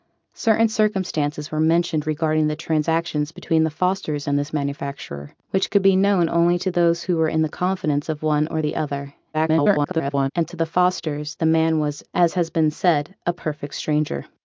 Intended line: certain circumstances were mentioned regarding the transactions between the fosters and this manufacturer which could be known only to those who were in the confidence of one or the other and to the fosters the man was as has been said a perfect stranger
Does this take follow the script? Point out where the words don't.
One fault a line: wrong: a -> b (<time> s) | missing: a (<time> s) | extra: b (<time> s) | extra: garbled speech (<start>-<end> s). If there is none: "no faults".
extra: garbled speech (9.3-10.3 s)